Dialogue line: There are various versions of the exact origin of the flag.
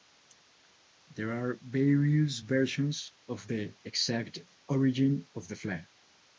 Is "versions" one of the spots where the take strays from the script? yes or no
no